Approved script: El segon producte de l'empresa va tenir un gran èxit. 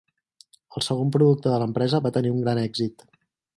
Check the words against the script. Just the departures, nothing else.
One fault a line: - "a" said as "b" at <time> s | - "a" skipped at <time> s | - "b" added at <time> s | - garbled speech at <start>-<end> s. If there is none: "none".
none